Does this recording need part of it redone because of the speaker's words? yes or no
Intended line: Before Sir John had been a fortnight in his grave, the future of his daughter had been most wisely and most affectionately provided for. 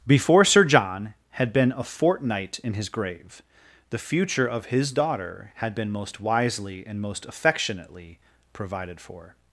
no